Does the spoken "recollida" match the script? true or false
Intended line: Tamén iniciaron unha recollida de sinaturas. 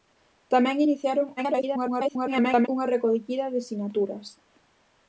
true